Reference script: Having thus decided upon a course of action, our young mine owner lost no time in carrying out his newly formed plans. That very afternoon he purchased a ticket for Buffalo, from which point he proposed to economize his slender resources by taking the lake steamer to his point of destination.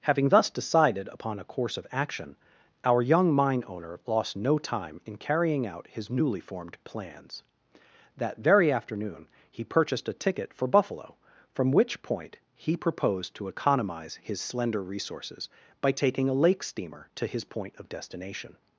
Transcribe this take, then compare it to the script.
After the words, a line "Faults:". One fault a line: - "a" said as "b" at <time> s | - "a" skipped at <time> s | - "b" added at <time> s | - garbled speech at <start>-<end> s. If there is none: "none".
Having thus decided upon a course of action, our young mine owner lost no time in carrying out his newly formed plans. That very afternoon he purchased a ticket for Buffalo, from which point he proposed to economize his slender resources by taking a lake steamer to his point of destination.
Faults:
- "the" said as "a" at 16.3 s